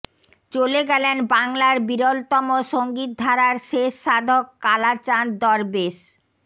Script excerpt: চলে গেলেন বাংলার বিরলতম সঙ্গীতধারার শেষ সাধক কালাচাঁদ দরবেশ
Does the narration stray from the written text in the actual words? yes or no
no